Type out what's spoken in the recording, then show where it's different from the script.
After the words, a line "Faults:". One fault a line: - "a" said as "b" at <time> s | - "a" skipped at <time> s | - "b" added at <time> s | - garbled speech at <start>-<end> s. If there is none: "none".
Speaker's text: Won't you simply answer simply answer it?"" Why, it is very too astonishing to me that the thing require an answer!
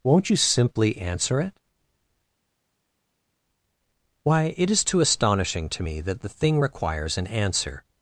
Won't you simply answer it?"" Why, it is too astonishing to me that the thing requires an answer!
Faults:
- "simply answer" skipped at 1.4 s
- "very" skipped at 4.8 s
- "require" said as "requires" at 6.6 s